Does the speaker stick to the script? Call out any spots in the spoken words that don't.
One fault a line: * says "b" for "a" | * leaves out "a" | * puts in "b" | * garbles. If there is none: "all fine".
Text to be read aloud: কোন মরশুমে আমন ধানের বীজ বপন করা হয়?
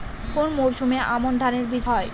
* leaves out "বপন করা"